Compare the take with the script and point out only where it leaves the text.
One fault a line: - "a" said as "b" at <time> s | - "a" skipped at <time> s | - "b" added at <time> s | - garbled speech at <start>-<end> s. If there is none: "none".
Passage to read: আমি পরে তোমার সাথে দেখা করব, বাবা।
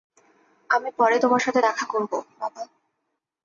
none